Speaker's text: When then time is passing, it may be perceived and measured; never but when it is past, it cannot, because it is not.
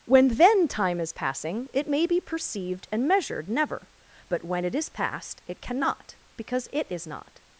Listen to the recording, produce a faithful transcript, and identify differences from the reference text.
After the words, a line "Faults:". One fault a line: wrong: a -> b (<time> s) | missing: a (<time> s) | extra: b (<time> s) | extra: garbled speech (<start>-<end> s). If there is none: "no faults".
When then time is passing, it may be perceived and measured; never but when it is past, it cannot, because it is not.
Faults:
no faults